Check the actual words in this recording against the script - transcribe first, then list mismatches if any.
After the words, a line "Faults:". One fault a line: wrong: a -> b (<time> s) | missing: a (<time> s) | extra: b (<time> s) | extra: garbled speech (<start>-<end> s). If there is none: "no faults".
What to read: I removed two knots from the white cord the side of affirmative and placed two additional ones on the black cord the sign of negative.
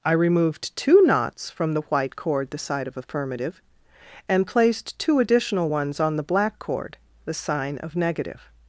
I removed two knots from the white cord the side of affirmative and placed two additional ones on the black cord the sign of negative.
Faults:
no faults